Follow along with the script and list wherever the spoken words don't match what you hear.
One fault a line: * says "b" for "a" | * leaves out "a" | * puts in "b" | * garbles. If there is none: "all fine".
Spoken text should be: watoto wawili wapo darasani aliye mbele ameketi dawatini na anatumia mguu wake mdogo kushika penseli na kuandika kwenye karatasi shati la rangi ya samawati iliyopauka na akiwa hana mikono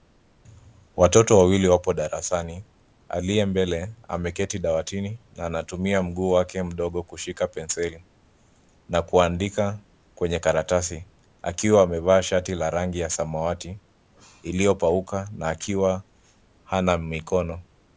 * puts in "akiwa amevaa"